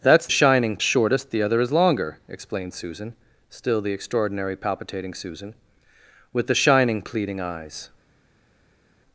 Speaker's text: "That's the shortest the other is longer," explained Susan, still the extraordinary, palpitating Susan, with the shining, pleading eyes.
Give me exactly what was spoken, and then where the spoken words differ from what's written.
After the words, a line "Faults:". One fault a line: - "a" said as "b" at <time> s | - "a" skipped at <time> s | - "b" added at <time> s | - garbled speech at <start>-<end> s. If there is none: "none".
"That's shining shortest the other is longer," explained Susan, still the extraordinary, palpitating Susan, with the shining, pleading eyes.
Faults:
- "the" said as "shining" at 0.3 s